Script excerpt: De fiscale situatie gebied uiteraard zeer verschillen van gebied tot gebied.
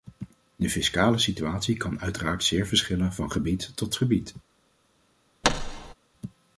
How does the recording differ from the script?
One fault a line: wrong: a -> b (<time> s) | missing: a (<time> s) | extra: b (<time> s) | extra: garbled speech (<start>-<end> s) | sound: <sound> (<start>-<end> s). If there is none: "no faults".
wrong: gebied -> kan (1.8 s)
sound: thud (5.4-5.9 s)